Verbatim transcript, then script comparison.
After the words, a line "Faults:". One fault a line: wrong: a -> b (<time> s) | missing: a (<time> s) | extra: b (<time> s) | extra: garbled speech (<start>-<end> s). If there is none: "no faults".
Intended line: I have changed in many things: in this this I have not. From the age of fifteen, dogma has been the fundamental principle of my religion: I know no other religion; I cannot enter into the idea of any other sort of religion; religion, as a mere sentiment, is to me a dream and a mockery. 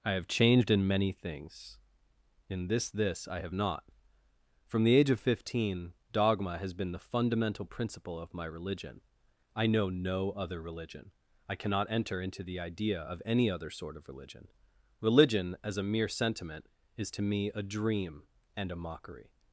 I have changed in many things: in this this I have not. From the age of fifteen, dogma has been the fundamental principle of my religion: I know no other religion; I cannot enter into the idea of any other sort of religion; religion, as a mere sentiment, is to me a dream and a mockery.
Faults:
no faults